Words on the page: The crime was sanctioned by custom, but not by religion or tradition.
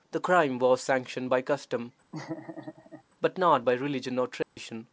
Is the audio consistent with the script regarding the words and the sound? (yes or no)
no